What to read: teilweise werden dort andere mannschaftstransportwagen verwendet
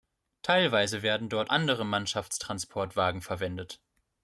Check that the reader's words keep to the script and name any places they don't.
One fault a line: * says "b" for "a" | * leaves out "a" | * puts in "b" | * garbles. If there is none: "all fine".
all fine